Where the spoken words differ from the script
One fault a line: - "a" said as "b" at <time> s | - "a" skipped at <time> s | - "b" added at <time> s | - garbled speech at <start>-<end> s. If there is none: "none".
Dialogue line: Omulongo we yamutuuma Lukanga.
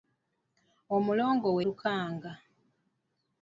- "yamutuuma" skipped at 1.6 s